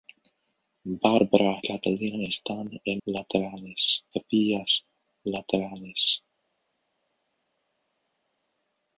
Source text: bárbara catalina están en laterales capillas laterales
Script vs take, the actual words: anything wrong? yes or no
no